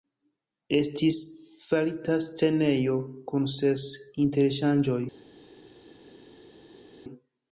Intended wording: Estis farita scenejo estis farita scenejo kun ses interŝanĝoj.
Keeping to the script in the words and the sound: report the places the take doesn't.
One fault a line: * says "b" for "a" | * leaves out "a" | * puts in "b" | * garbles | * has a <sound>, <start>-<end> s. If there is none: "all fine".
* leaves out "estis farita scenejo"